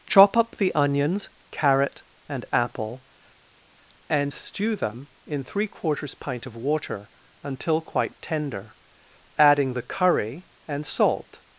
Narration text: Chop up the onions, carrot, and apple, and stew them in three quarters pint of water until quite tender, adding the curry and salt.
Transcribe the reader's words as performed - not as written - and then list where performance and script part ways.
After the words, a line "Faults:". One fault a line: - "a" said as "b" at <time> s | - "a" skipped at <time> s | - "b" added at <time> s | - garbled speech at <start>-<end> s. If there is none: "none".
Chop up the onions, carrot, and apple, and stew them in three quarters pint of water until quite tender, adding the curry and salt.
Faults:
none